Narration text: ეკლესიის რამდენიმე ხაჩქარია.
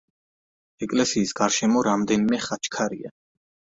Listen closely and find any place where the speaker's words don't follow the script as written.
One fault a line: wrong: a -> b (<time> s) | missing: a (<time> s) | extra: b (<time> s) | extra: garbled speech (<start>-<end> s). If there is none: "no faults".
extra: გარშემო (1.4 s)